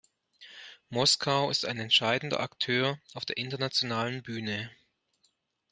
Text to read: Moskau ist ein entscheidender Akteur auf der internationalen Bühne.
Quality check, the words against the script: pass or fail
pass